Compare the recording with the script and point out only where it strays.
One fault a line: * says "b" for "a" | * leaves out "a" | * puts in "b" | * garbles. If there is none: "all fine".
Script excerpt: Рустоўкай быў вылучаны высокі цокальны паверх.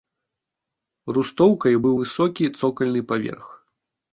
* leaves out "вылучаны"